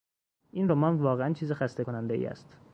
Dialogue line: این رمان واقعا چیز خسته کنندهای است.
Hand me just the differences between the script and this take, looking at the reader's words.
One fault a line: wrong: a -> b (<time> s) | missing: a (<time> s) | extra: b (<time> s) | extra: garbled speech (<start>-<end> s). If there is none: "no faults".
no faults